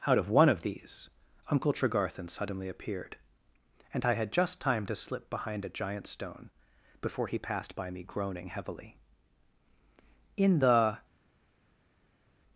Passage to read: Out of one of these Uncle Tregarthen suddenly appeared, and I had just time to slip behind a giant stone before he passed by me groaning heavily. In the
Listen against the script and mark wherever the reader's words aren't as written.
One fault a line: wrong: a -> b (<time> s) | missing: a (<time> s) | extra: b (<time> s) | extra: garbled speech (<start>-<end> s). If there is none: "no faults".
no faults